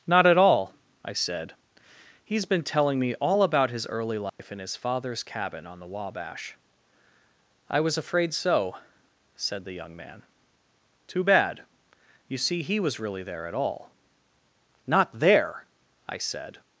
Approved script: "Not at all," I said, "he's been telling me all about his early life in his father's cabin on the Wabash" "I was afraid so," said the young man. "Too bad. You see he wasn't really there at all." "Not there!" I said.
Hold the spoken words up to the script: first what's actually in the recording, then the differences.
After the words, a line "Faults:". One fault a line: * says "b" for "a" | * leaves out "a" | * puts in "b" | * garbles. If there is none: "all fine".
"Not at all," I said, "he's been telling me all about his early life in his father's cabin on the Wabash" "I was afraid so," said the young man. "Too bad. You see he was really there at all." "Not there!" I said.
Faults:
* says "was" for "wasn't"